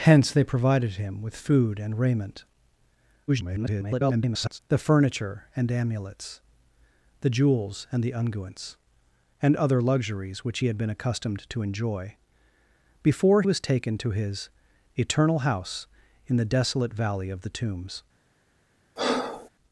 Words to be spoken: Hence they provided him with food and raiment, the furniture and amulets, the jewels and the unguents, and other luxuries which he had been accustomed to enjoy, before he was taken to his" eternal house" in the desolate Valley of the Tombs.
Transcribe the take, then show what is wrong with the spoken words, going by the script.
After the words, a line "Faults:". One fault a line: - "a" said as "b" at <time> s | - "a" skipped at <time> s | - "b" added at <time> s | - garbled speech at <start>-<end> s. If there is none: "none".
Hence they provided him with food and raiment, [garbled] the furniture and amulets, the jewels and the unguents, and other luxuries which he had been accustomed to enjoy, before was taken to his" eternal house" in the desolate Valley of the Tombs.
Faults:
- garbled speech at 3.3-4.6 s
- "he" skipped at 13.4 s